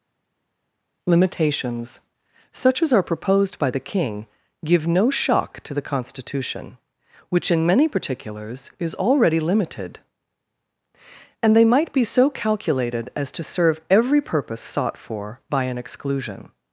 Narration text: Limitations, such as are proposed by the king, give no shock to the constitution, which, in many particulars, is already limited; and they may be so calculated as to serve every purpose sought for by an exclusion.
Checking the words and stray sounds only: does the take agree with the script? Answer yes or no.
no